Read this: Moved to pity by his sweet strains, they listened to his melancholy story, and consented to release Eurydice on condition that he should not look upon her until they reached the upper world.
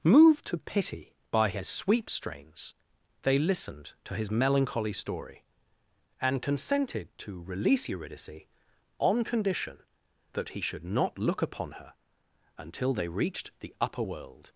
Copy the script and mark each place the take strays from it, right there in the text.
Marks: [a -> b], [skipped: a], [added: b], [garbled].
Moved to pity by his [sweet -> sweep] strains, they listened to his melancholy story, and consented to release Eurydice on condition that he should not look upon her until they reached the upper world.